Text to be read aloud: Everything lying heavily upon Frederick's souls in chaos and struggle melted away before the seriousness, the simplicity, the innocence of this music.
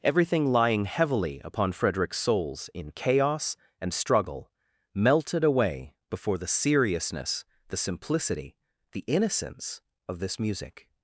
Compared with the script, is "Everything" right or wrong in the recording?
right